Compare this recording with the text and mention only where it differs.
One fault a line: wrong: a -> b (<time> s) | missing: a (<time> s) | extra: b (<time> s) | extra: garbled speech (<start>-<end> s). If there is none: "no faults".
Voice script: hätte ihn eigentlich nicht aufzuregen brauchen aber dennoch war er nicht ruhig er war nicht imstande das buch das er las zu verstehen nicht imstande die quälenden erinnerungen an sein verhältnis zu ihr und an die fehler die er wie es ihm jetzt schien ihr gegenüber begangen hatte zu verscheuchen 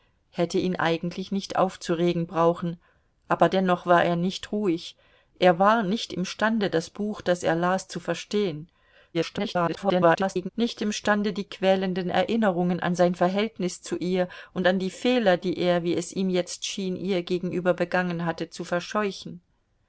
extra: garbled speech (9.1-10.5 s)